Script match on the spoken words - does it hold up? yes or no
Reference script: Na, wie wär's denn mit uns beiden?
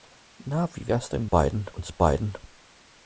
no